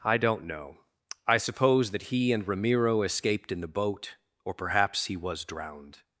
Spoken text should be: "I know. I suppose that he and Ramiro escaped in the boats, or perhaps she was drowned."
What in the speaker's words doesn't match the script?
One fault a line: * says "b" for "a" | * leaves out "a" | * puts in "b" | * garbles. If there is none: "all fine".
* puts in "don't"
* says "boat" for "boats"
* says "he" for "she"